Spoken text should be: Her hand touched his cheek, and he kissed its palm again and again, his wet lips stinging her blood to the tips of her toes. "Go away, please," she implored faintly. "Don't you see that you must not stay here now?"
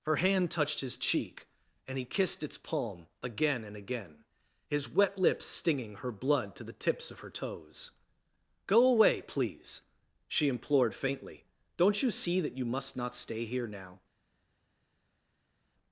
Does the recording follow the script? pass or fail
pass